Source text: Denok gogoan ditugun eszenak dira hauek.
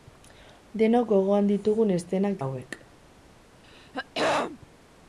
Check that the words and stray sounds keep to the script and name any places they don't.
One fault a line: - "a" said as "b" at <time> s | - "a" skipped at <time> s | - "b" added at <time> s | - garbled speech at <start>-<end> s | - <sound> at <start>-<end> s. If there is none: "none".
- "dira" skipped at 2.4 s
- throat clearing at 3.6-4.6 s